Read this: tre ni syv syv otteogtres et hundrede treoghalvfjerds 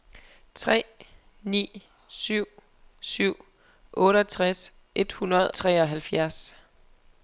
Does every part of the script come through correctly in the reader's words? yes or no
yes